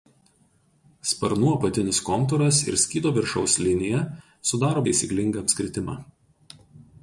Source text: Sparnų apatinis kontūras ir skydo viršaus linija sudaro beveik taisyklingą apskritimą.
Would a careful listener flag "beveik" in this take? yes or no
yes